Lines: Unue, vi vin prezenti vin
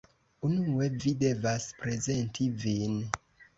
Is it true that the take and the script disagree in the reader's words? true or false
true